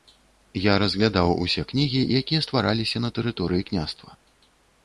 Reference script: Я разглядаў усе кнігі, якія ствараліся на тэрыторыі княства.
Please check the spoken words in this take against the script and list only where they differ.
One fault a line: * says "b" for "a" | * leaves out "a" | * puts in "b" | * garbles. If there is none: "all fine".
all fine